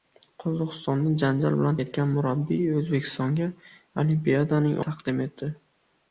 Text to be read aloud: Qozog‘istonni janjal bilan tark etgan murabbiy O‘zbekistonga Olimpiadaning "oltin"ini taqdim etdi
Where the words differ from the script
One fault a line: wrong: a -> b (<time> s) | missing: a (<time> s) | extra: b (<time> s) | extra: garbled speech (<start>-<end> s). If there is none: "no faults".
missing: tark (1.8 s)
missing: oltin"ini (4.8 s)